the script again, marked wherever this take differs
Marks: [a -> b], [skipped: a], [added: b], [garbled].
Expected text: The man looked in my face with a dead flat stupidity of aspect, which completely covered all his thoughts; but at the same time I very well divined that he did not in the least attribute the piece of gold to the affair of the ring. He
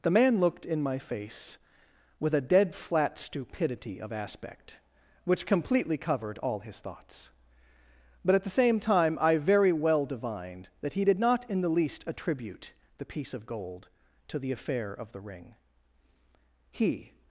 The man looked in my face with a dead flat stupidity of aspect, which completely covered all his thoughts; but at the same time I very well divined that he did not in the least attribute the piece of gold to the affair of the ring. He